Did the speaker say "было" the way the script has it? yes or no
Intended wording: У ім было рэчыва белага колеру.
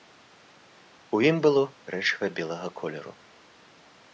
yes